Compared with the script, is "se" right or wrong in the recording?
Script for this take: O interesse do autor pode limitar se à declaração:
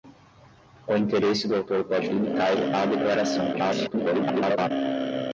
wrong